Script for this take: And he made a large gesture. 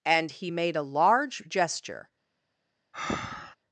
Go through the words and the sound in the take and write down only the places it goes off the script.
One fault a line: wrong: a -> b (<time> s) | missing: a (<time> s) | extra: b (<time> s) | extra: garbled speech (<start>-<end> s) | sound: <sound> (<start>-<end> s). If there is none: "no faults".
sound: breath (2.9-3.6 s)